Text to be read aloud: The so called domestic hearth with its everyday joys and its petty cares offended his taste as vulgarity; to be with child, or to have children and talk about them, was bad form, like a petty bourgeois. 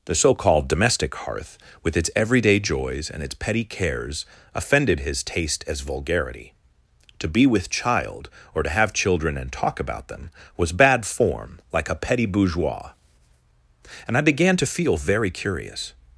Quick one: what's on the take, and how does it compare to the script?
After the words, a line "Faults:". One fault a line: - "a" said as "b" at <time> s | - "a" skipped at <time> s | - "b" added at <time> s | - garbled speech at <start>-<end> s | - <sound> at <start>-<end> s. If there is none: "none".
The so called domestic hearth with its everyday joys and its petty cares offended his taste as vulgarity; to be with child, or to have children and talk about them, was bad form, like a petty bourgeois. And I began to feel very curious
Faults:
- "And I began to feel very curious" added at 14.1 s